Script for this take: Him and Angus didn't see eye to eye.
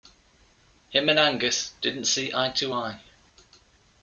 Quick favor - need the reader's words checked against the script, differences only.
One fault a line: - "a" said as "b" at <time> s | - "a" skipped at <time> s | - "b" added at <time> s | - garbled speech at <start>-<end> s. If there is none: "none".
none